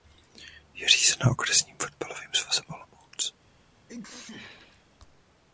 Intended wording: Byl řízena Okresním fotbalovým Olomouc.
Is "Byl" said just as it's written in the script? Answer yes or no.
no